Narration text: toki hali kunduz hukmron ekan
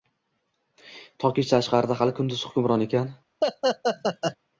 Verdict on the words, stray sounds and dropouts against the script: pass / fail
fail